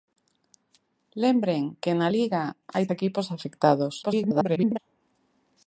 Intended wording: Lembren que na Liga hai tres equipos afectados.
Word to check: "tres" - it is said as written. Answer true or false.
false